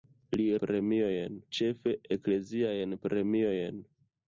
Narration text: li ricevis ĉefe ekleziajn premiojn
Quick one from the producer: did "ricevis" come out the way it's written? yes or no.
no